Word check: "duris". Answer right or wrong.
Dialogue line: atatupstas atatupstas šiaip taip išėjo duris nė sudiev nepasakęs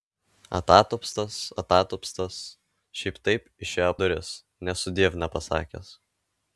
right